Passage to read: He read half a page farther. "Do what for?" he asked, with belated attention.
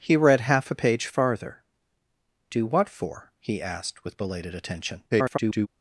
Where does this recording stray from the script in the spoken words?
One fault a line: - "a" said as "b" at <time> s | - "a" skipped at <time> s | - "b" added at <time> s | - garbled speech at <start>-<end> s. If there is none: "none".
- garbled speech at 5.1-5.7 s